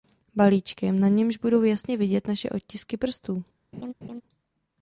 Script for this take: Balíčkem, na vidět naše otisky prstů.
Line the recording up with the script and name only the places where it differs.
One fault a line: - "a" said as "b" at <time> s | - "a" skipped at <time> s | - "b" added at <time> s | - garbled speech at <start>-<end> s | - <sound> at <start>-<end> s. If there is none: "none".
- "němž budou jasně" added at 1.1 s
- laugh at 3.7-4.2 s